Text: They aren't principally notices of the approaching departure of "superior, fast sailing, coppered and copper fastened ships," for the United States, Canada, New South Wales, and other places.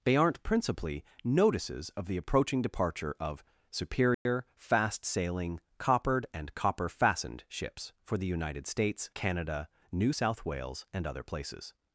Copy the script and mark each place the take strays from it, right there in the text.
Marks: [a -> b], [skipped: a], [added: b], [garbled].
They aren't principally notices of the approaching departure of "superior, fast sailing, coppered and copper fastened ships," for the United States, Canada, New South Wales, and other places.